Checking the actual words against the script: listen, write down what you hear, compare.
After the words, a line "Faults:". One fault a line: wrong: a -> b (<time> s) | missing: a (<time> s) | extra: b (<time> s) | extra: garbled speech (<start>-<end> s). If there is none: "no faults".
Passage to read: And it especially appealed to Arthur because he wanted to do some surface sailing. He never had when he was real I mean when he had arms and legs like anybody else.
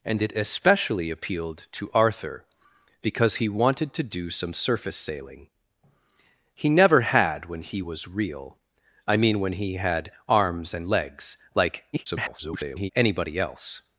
And it especially appealed to Arthur because he wanted to do some surface sailing. He never had when he was real I mean when he had arms and legs like [garbled] anybody else.
Faults:
extra: garbled speech (11.9-12.9 s)